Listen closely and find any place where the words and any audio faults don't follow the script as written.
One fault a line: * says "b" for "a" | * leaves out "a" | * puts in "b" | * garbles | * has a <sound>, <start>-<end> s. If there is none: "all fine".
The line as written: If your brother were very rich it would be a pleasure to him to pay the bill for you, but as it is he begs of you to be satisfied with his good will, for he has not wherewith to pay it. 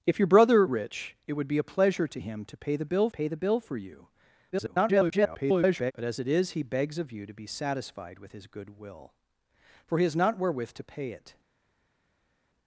* leaves out "were very"
* puts in "pay the bill"
* garbles